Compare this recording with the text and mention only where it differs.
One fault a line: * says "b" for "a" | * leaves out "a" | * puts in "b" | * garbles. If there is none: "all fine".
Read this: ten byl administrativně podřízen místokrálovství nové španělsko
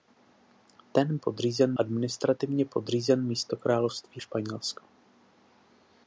* says "podřízen" for "byl"
* leaves out "nové"